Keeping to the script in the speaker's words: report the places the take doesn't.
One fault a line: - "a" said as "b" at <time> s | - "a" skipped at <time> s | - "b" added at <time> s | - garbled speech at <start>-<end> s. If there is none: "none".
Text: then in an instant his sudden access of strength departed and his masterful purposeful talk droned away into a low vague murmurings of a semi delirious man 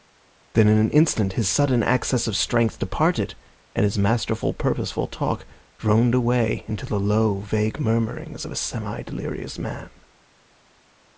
- "a" said as "the" at 6.9 s